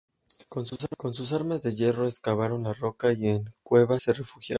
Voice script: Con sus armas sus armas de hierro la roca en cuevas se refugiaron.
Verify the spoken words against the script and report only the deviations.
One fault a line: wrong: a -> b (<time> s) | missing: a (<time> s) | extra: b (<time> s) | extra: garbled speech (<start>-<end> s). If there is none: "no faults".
missing: sus armas (1.6 s)
extra: excavaron (2.1 s)
extra: y (3.1 s)